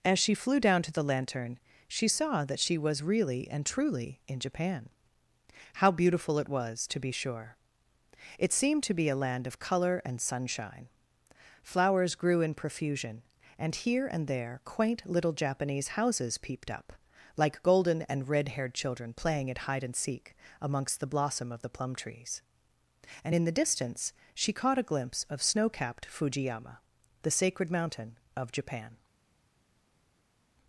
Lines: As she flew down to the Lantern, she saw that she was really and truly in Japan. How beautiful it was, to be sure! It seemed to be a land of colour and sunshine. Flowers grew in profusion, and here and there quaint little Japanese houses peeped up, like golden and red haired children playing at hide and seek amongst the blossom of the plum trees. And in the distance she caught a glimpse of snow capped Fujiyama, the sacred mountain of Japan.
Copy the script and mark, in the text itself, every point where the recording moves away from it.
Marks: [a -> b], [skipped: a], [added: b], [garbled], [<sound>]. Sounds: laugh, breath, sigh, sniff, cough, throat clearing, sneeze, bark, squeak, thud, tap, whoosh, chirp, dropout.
As she flew down to the Lantern, she saw that she was really and truly in Japan. How beautiful it was, to be sure! It seemed to be a land of colour and sunshine. Flowers grew in profusion, and here and there quaint little Japanese houses peeped up, like golden and red haired children playing at hide and seek amongst the blossom of the plum trees. And in the distance she caught a glimpse of snow capped Fujiyama, the sacred mountain of Japan.